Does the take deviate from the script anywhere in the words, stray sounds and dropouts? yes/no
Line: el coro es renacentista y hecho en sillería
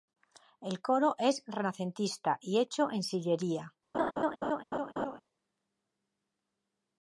yes